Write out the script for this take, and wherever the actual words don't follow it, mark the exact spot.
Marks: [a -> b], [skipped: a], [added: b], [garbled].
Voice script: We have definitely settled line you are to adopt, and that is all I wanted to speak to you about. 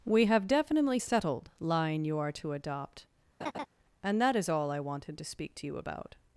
We have definitely settled line you are to adopt, and that is all I wanted to speak to you about.